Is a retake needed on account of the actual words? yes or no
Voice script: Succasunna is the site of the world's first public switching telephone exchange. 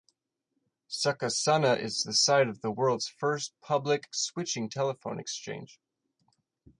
no